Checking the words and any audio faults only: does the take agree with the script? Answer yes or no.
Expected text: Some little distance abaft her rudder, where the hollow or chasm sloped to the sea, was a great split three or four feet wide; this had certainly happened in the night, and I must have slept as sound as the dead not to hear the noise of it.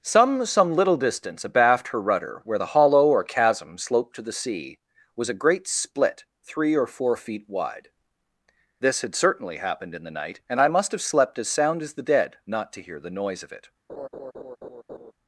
no